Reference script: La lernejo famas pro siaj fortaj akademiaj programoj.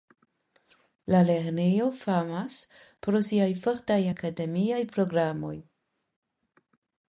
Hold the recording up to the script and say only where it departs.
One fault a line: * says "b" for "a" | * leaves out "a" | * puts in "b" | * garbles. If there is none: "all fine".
all fine